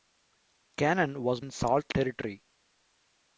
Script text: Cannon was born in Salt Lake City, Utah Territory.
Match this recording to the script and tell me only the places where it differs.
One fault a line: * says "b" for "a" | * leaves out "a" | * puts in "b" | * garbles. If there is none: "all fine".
* leaves out "born"
* leaves out "Lake City Utah"